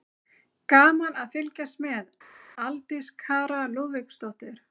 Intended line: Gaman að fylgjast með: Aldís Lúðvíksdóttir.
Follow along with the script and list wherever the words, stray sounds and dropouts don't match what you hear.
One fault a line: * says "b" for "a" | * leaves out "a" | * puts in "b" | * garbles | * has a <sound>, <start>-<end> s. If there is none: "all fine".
* puts in "Kara"